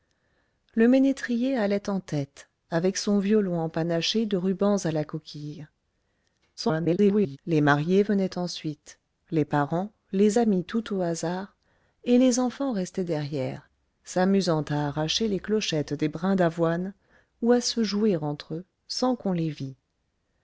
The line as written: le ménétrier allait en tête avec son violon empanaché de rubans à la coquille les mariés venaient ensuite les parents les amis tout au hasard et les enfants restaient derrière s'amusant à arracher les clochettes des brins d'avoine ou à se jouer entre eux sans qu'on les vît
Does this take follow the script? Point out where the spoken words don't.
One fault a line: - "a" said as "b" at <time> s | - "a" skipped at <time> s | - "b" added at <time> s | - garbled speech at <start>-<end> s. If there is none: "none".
- garbled speech at 6.6-7.4 s